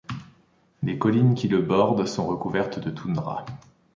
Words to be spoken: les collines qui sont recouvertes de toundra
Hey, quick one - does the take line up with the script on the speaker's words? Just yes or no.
no